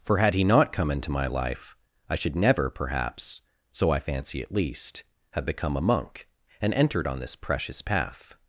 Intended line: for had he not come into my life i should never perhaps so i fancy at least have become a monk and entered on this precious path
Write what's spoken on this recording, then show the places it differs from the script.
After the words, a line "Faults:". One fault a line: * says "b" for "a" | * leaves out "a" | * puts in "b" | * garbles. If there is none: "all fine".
for had he not come into my life i should never perhaps so i fancy at least have become a monk and entered on this precious path
Faults:
all fine